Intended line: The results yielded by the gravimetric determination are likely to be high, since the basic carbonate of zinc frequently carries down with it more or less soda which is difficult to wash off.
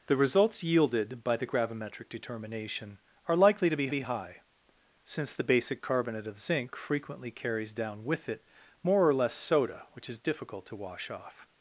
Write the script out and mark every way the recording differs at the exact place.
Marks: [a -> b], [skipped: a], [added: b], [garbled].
The results yielded by the gravimetric determination are likely to be [added: be] high, since the basic carbonate of zinc frequently carries down with it more or less soda which is difficult to wash off.